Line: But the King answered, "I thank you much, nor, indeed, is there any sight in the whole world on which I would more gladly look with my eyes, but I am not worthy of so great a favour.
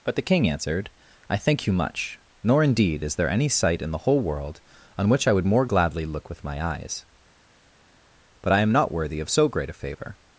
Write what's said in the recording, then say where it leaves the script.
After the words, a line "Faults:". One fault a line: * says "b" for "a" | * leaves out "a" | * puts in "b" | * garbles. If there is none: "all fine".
But the King answered, "I thank you much, nor, indeed, is there any sight in the whole world on which I would more gladly look with my eyes, but I am not worthy of so great a favour.
Faults:
all fine